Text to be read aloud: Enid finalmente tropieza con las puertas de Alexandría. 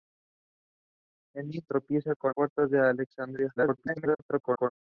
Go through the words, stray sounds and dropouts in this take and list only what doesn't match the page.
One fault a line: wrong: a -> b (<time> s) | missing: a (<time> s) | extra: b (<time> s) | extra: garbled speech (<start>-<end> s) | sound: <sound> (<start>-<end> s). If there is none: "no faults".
missing: finalmente (1.6 s)
missing: las (2.4 s)
extra: garbled speech (3.6-4.7 s)